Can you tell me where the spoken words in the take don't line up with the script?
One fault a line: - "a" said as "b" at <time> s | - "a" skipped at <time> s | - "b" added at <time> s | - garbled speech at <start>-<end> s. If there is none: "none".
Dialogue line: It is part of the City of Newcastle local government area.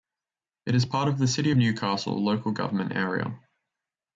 none